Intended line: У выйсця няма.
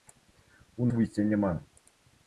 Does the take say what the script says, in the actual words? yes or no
yes